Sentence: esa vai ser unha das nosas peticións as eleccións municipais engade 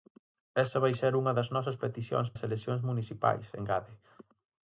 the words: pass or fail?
pass